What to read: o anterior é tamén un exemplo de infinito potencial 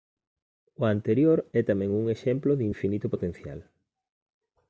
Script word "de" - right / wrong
right